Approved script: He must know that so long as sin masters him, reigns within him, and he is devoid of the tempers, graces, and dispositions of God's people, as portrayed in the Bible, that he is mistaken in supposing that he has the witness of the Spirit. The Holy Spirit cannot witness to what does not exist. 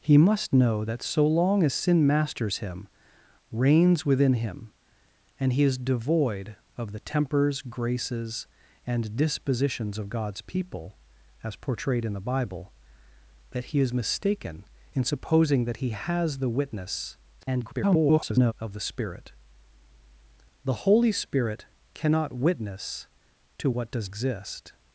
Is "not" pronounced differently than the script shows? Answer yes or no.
yes